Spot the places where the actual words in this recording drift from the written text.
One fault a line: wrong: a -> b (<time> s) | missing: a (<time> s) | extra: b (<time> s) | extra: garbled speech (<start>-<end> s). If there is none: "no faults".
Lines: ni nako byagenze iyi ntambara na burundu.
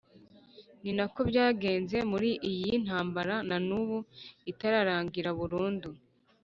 extra: muri (2.1 s)
extra: n'ubu itararangira (3.7 s)